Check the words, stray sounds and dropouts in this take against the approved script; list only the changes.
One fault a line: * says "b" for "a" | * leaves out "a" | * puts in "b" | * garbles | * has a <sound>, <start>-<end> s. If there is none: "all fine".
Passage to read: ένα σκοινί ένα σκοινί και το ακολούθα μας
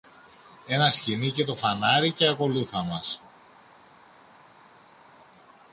* says "και το φανάρι" for "ένα σκοινί"
* leaves out "το"